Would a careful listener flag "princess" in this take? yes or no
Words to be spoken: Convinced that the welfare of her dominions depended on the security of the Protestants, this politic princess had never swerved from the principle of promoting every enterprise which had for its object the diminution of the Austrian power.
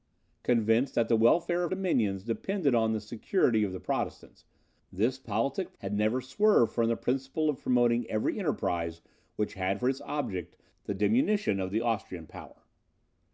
yes